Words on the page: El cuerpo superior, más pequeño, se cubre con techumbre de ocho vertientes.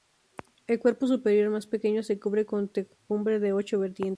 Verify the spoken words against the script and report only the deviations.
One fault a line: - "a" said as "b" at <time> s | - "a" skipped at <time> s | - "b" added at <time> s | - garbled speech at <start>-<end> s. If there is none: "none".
none